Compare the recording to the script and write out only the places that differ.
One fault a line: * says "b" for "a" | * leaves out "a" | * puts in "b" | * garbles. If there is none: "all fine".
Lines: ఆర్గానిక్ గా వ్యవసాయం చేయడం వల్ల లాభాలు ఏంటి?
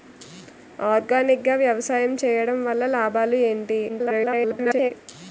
* garbles